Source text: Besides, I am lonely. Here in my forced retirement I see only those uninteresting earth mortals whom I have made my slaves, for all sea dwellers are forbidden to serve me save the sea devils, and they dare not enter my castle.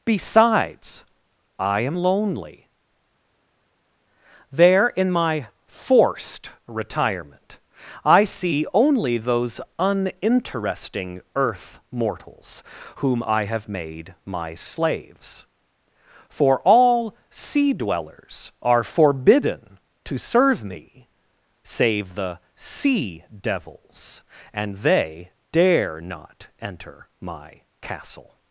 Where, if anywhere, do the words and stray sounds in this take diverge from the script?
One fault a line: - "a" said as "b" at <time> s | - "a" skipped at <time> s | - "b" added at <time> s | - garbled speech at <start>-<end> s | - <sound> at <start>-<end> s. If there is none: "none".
- "Here" said as "There" at 4.5 s